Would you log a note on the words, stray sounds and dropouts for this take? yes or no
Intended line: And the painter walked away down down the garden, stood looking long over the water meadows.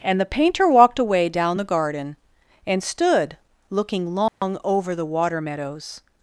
yes